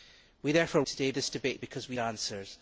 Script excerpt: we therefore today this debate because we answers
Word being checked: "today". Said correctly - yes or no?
yes